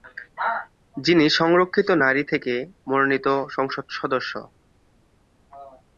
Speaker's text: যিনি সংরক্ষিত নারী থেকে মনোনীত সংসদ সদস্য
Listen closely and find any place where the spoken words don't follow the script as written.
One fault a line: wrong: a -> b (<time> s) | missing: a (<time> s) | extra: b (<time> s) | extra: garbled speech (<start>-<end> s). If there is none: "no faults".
no faults